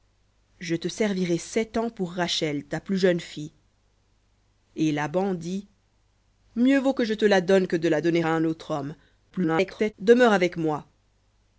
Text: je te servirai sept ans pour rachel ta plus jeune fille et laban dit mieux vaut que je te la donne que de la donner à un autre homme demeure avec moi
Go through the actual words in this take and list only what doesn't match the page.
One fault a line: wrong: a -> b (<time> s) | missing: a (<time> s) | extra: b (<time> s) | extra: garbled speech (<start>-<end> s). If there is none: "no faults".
extra: garbled speech (9.3-9.9 s)